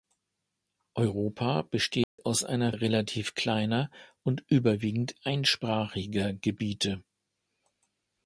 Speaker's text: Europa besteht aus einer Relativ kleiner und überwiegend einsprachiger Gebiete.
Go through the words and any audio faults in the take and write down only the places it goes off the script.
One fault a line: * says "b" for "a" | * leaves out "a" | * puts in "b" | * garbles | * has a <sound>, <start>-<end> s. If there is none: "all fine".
* has a dropout, 2.0-2.2 s